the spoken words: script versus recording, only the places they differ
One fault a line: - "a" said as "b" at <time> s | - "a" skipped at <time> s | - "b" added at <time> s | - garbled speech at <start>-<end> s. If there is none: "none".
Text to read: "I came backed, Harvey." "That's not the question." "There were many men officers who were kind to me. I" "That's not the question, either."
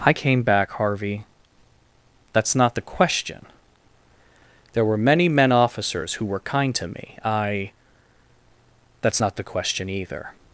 - "backed" said as "back" at 0.4 s